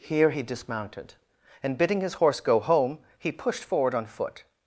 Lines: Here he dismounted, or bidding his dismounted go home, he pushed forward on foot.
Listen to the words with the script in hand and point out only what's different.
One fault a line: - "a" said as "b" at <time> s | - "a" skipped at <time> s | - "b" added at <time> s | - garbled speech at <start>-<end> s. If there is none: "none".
- "or" said as "and" at 1.6 s
- "dismounted" said as "horse" at 2.1 s